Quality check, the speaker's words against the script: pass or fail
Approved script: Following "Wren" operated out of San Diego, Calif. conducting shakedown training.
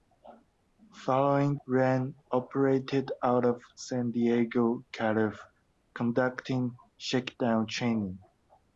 pass